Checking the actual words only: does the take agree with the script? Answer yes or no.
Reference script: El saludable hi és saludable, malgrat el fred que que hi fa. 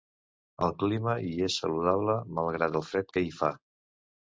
no